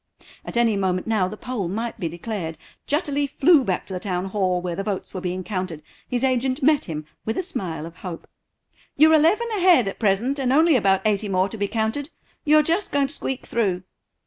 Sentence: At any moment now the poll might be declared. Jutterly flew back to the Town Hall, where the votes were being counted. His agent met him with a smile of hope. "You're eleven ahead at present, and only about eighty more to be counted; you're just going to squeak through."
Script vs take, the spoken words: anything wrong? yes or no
no